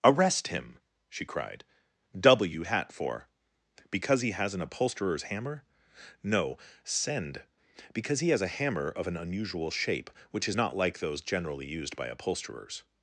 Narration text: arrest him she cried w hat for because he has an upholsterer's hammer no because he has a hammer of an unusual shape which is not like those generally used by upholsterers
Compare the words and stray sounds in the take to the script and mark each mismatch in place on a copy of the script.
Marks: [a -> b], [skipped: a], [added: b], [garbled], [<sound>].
arrest him she cried w hat for because he has an upholsterer's hammer no [added: send] because he has a hammer of an unusual shape which is not like those generally used by upholsterers